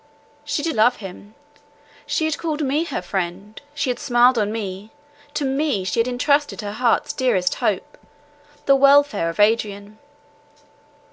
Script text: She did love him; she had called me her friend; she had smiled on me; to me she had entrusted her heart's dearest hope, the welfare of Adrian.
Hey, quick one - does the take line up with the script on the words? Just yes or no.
yes